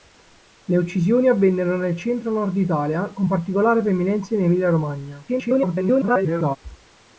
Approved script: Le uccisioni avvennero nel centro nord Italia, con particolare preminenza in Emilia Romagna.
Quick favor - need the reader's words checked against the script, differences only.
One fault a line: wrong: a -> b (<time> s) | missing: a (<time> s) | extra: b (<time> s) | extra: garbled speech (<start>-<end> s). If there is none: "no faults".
extra: garbled speech (5.3-6.6 s)